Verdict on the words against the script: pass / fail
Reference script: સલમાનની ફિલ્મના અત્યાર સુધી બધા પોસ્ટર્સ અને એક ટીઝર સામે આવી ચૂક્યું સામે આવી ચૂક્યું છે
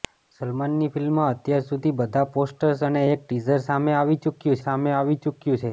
pass